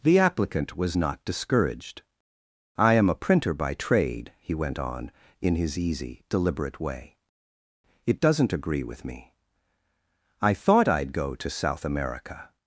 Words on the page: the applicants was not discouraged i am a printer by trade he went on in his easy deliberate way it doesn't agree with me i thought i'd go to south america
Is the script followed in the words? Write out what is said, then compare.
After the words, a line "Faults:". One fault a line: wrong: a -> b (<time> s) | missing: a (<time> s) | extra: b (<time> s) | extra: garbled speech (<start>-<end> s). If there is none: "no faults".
the applicant was not discouraged i am a printer by trade he went on in his easy deliberate way it doesn't agree with me i thought i'd go to south america
Faults:
wrong: applicants -> applicant (0.2 s)